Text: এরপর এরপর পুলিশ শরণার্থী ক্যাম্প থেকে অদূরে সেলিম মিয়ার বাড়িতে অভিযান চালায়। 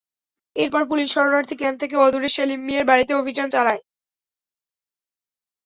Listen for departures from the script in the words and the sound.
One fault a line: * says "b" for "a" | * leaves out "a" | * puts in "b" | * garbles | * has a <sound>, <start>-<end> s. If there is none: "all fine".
* leaves out "এরপর"